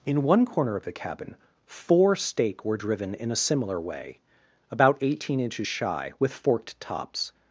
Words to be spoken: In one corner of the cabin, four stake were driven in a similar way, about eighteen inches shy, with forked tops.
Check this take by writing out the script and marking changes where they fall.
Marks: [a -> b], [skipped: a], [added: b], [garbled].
In one corner of the cabin, four stake were driven in a similar way, about eighteen inches shy, with forked tops.